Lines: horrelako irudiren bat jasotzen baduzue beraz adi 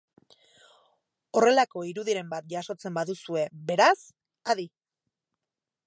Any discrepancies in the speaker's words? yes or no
no